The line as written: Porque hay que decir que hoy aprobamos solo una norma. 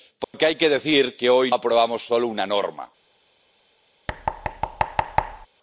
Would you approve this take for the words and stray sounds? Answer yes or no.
no